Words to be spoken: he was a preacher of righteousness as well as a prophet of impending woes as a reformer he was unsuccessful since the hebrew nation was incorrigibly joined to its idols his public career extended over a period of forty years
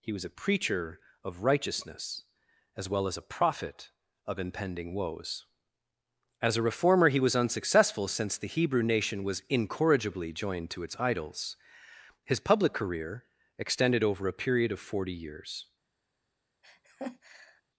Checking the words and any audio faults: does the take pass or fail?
fail